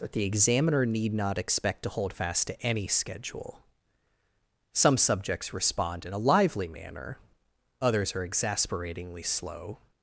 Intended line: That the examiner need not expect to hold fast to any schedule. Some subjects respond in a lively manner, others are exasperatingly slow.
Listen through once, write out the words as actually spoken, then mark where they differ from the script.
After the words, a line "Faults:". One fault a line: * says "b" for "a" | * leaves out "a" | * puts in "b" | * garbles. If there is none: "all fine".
That the examiner need not expect to hold fast to any schedule. Some subjects respond in a lively manner, others are exasperatingly slow.
Faults:
all fine